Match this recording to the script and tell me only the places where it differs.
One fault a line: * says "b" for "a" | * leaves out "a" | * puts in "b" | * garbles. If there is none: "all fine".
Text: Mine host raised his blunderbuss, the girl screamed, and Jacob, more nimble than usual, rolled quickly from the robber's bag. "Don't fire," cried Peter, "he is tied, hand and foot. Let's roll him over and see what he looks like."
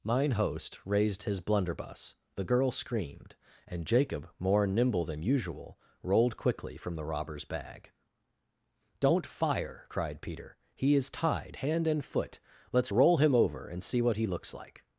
all fine